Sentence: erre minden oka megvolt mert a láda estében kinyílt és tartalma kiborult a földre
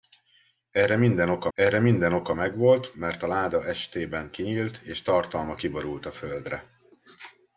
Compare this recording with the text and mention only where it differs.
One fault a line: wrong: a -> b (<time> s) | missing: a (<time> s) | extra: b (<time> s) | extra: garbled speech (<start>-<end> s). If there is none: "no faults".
extra: erre minden oka (1.5 s)